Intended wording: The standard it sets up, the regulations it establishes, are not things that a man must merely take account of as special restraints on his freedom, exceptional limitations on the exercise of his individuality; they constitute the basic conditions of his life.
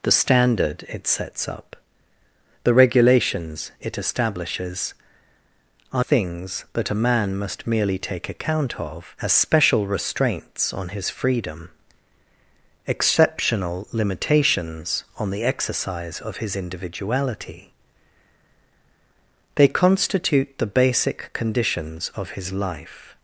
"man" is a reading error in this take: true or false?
false